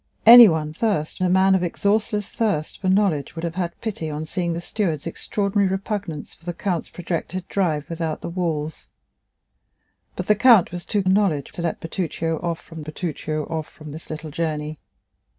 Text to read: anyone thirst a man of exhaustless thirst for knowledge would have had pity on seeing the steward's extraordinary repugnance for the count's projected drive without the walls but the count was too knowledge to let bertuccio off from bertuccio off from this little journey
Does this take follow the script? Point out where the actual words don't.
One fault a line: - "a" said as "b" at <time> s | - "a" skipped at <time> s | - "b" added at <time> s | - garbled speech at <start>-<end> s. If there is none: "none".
none